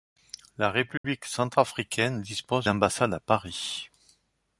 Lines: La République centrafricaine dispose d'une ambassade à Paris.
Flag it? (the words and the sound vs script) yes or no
yes